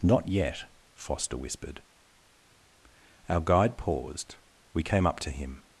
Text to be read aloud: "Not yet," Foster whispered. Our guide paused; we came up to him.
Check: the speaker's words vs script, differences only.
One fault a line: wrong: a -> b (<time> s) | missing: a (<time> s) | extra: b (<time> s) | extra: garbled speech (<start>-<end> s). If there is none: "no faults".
no faults